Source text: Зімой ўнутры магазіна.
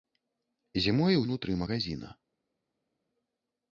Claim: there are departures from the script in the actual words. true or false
false